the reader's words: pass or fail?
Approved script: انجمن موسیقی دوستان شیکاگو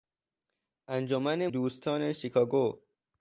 fail